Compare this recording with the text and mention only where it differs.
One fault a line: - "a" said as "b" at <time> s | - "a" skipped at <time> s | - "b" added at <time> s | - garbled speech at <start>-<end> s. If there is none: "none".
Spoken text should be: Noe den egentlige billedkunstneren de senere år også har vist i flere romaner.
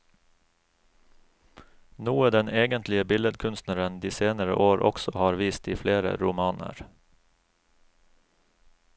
none